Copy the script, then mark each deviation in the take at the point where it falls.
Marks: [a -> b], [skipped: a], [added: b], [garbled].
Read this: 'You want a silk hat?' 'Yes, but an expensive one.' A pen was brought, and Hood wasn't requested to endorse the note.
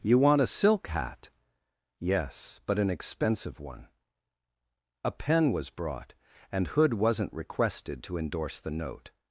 'You want a silk hat?' 'Yes, but an expensive one.' A pen was brought, and Hood wasn't requested to endorse the note.